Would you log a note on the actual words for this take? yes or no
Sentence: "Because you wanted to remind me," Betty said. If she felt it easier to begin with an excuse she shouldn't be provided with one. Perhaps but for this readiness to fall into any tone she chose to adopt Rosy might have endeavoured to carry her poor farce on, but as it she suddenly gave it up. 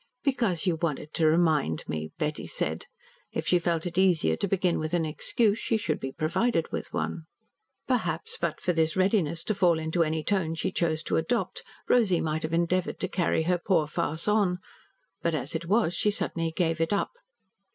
yes